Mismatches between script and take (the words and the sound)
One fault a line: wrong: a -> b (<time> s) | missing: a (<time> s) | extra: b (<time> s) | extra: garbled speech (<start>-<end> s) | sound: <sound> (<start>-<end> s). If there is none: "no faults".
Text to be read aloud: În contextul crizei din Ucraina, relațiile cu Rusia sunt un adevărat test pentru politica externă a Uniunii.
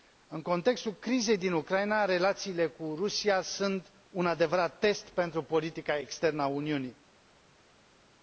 no faults